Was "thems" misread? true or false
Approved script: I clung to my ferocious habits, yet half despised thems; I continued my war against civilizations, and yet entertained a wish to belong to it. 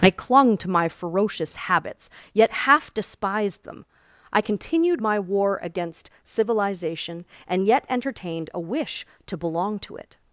true